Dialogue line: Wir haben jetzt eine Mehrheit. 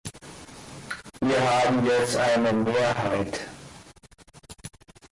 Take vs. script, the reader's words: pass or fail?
pass